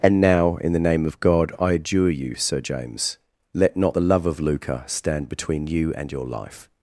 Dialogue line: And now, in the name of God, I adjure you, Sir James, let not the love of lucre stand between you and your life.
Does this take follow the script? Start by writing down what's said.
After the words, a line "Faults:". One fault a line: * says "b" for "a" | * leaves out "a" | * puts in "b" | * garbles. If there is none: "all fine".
And now, in the name of God, I adjure you, Sir James, let not the love of lucre stand between you and your life.
Faults:
all fine